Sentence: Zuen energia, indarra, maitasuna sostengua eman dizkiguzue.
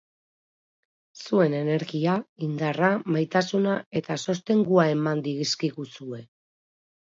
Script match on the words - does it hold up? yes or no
no